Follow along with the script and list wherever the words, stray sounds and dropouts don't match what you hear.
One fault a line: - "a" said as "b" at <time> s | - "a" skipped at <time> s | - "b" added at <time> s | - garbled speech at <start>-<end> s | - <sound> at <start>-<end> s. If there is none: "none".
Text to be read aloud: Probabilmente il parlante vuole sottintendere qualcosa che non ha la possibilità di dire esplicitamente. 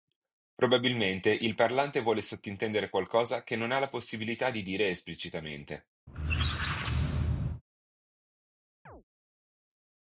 - squeak at 6.1-7.6 s
- chirp at 8.9-9.0 s